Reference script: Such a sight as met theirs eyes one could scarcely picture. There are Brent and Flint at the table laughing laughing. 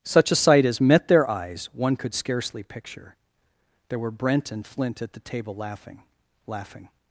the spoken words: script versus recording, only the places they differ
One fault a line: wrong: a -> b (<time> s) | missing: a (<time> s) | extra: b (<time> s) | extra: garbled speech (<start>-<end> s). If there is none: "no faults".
wrong: theirs -> their (1.1 s)
wrong: are -> were (4.0 s)